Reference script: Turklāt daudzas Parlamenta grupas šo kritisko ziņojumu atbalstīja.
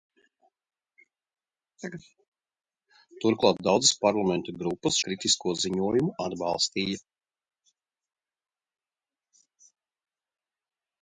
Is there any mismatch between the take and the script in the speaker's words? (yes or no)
yes